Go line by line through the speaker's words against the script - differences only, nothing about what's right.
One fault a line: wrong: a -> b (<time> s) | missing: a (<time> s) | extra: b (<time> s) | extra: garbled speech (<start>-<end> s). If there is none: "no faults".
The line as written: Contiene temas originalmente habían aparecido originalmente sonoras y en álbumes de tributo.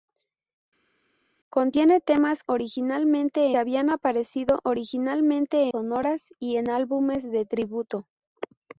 no faults